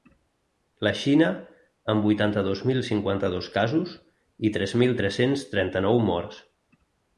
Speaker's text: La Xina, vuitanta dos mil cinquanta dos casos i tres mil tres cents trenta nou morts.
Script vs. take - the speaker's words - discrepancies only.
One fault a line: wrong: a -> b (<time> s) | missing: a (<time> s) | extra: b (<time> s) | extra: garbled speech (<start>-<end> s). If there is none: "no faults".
extra: amb (1.9 s)